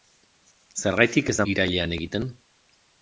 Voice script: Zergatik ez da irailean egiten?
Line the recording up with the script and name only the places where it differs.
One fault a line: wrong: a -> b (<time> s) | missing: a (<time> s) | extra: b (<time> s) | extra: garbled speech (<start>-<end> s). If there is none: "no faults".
no faults